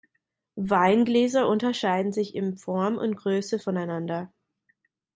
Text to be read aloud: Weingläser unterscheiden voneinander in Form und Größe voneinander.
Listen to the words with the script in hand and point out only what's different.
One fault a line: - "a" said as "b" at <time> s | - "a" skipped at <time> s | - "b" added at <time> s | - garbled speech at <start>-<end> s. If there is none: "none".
- "voneinander" said as "sich" at 2.1 s